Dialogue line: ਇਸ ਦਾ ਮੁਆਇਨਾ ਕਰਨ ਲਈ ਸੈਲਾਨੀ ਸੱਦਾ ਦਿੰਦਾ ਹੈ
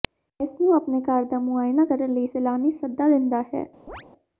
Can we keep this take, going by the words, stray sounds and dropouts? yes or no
no